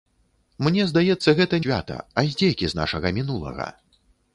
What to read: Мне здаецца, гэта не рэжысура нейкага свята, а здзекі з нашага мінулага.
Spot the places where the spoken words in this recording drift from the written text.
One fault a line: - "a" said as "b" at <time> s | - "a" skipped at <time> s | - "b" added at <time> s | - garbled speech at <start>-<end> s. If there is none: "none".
- "не рэжысура нейкага" skipped at 1.6 s